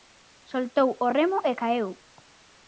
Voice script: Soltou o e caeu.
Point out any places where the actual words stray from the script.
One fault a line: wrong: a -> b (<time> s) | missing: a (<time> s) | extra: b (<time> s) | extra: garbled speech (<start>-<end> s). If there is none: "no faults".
extra: remo (1.2 s)